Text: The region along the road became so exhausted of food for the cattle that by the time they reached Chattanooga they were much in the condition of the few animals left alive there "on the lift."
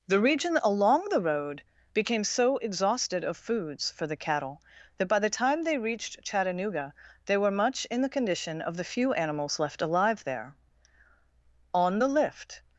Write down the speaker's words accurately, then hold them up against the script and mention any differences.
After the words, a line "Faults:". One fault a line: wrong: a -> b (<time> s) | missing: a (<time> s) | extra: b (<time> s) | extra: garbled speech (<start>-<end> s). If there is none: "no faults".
The region along the road became so exhausted of foods for the cattle that by the time they reached Chattanooga they were much in the condition of the few animals left alive there "on the lift."
Faults:
wrong: food -> foods (3.3 s)